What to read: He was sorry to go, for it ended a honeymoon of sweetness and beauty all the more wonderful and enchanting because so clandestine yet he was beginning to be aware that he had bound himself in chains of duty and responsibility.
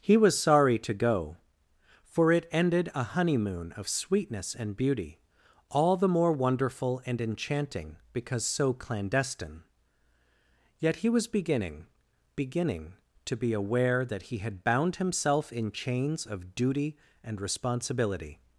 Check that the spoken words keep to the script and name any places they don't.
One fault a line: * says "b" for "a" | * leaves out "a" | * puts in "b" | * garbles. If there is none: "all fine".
* puts in "beginning"